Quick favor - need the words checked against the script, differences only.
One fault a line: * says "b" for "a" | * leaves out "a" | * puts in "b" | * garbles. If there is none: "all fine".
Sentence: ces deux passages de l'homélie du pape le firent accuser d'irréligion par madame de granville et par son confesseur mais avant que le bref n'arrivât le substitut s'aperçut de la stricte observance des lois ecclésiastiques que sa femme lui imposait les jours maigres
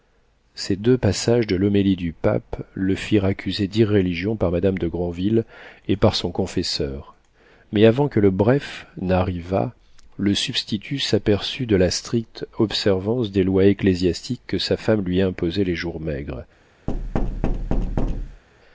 all fine